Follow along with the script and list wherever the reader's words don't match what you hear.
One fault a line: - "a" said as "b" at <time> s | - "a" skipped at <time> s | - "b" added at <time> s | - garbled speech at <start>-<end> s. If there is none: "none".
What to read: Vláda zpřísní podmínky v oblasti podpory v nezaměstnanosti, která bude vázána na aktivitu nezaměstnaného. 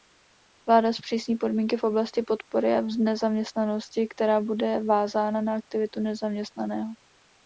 none